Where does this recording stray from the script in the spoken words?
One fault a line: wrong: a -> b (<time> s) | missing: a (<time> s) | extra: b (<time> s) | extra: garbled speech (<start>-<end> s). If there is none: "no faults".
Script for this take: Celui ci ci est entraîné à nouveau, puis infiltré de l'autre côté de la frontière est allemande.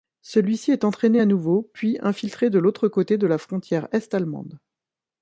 missing: ci (0.7 s)